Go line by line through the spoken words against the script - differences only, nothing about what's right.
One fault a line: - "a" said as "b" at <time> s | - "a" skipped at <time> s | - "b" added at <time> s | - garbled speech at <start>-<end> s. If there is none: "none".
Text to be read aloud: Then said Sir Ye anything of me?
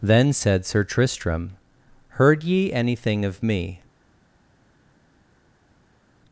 - "Tristram Heard" added at 0.8 s